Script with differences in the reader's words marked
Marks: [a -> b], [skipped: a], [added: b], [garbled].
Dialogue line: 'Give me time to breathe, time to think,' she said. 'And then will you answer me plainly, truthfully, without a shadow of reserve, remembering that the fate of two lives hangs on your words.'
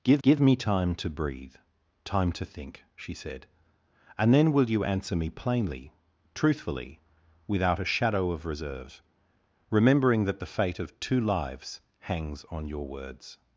'Give [added: give] me time to breathe, time to think,' she said. 'And then will you answer me plainly, truthfully, without a shadow of reserve, remembering that the fate of two lives hangs on your words.'